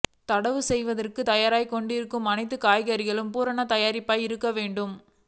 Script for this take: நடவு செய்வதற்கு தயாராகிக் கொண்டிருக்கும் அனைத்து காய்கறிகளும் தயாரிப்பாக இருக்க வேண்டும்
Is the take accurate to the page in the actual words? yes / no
no